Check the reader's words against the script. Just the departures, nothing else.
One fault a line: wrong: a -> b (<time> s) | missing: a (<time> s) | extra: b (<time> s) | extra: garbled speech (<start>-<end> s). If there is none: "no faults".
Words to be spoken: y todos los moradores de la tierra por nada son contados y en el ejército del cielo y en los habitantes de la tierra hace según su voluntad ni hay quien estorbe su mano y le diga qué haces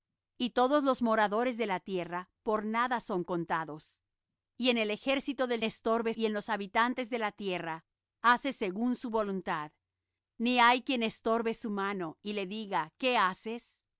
wrong: cielo -> estorbe (5.6 s)